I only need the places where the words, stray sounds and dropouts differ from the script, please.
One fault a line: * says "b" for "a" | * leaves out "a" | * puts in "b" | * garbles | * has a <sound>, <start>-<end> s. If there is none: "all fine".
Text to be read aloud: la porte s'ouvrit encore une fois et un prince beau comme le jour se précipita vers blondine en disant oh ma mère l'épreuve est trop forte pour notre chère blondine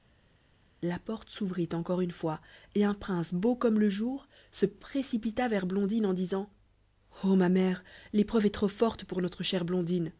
all fine